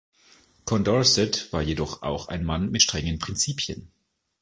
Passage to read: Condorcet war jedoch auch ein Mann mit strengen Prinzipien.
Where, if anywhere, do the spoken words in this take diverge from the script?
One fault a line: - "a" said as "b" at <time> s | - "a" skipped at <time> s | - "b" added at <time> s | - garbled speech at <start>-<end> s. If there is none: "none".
none